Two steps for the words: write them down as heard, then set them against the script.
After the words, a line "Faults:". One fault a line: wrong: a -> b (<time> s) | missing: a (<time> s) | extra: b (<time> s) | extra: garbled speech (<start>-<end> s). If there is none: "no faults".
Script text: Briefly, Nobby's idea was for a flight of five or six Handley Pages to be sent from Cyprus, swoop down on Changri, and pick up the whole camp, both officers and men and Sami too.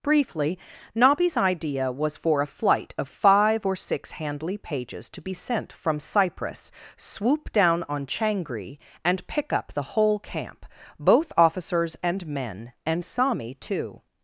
Briefly, Nobby's idea was for a flight of five or six Handley Pages to be sent from Cyprus, swoop down on Changri, and pick up the whole camp, both officers and men and Sami too.
Faults:
no faults